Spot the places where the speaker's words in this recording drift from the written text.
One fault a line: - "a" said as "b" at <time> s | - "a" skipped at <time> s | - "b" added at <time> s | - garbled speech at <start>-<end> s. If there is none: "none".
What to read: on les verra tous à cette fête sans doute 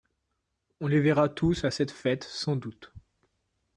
none